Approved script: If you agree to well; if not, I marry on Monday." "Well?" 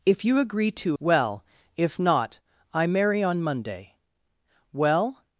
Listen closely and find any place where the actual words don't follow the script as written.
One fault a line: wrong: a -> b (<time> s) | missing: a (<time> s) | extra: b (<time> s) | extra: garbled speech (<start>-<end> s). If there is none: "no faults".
no faults